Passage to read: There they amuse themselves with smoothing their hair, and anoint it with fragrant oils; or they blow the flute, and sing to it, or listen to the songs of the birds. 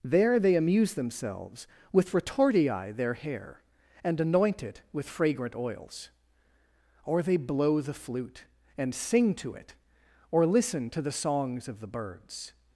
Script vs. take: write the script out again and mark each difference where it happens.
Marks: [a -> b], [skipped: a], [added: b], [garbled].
There they amuse themselves with [smoothing -> retortii] their hair, and anoint it with fragrant oils; or they blow the flute, and sing to it, or listen to the songs of the birds.